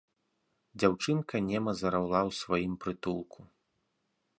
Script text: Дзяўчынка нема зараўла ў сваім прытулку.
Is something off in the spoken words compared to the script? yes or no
no